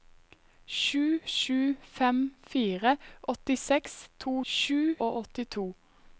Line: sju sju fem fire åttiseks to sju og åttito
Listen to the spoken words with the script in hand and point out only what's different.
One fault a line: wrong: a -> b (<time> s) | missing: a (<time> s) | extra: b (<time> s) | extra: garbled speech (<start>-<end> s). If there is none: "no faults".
no faults